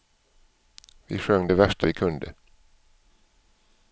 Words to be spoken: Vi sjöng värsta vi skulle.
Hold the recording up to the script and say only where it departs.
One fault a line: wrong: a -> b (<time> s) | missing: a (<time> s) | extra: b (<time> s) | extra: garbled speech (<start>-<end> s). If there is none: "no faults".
extra: det (1.4 s)
wrong: skulle -> kunde (1.9 s)